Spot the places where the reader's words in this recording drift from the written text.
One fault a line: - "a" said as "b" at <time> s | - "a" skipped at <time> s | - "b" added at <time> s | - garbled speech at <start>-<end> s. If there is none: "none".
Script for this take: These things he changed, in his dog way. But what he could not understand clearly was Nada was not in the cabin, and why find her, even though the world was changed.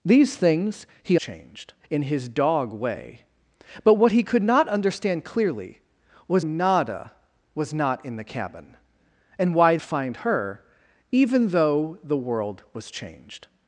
none